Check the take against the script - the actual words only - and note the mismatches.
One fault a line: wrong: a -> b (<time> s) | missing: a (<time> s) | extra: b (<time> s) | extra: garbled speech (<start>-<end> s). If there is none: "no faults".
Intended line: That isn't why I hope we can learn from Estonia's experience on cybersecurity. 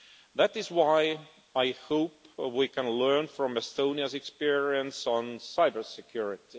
wrong: isn't -> is (0.6 s)